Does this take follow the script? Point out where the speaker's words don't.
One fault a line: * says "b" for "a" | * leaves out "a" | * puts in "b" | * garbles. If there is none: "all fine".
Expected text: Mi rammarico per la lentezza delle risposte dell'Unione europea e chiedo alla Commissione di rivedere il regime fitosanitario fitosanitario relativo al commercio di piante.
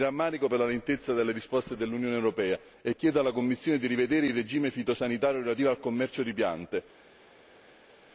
* leaves out "fitosanitario"